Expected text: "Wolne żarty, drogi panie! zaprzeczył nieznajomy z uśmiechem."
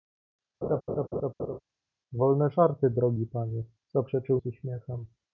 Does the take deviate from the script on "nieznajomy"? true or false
true